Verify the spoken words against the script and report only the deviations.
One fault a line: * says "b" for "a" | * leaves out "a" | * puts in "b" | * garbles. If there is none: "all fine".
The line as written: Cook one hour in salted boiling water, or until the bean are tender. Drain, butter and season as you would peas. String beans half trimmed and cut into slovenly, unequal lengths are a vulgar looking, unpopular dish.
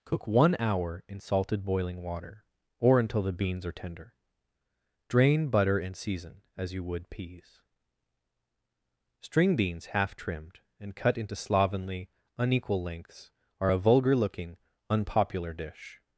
* says "beans" for "bean"